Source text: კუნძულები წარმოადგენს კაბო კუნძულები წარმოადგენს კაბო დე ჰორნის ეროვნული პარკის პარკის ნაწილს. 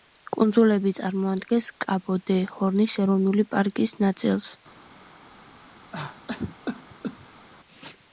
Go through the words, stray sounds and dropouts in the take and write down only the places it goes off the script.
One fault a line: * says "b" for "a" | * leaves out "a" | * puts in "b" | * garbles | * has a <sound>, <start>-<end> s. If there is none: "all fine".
* leaves out "კუნძულები წარმოადგენს კაბო"
* leaves out "პარკის"
* has a cough, 5.9-7.5 s